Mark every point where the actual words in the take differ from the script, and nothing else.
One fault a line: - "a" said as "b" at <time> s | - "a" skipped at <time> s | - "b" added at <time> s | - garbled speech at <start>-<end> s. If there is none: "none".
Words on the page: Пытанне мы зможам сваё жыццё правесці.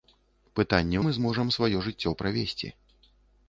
none